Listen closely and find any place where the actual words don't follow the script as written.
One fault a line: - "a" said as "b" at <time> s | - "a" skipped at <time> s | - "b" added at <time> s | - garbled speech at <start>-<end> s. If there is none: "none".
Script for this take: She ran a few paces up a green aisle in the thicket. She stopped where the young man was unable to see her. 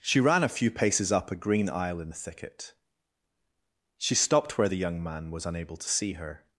none